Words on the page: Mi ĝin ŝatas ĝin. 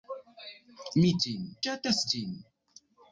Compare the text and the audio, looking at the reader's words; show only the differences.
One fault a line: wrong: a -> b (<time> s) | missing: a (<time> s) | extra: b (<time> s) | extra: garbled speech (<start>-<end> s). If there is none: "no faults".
no faults